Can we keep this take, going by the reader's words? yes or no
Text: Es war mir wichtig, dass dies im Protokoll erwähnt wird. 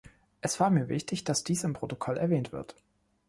yes